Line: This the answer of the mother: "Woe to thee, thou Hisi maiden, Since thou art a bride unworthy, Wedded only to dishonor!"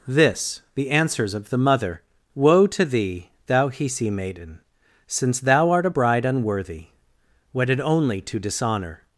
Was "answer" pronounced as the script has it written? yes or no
no